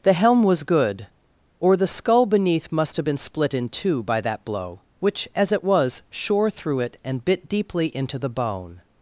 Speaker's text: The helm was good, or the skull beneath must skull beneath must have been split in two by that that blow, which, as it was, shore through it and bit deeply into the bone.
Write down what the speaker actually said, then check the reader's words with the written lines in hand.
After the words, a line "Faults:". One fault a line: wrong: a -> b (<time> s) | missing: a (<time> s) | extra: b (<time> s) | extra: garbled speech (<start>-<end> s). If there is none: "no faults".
The helm was good, or the skull beneath must have been split in two by that blow, which, as it was, shore through it and bit deeply into the bone.
Faults:
missing: skull beneath must (3.0 s)
missing: that (4.4 s)